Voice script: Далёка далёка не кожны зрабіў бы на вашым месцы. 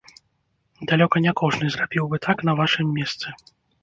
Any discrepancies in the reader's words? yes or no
yes